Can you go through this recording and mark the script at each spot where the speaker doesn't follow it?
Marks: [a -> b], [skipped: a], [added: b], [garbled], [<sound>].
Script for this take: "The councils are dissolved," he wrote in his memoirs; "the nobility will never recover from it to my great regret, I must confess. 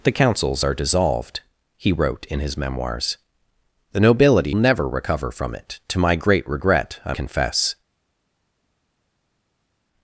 "The councils are dissolved," he wrote in his memoirs; "the nobility [skipped: will] never recover from it to my great regret, I [skipped: must] confess.